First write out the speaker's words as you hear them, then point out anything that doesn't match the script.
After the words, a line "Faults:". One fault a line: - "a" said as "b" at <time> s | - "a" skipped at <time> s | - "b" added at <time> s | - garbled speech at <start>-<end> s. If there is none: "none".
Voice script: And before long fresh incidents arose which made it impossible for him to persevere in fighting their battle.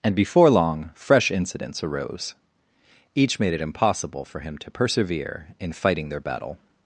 And before long fresh incidents arose each made it impossible for him to persevere in fighting their battle.
Faults:
- "which" said as "each" at 3.1 s